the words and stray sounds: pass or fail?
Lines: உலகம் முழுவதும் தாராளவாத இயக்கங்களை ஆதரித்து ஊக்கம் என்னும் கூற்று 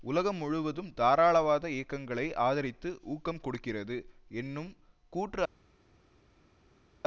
fail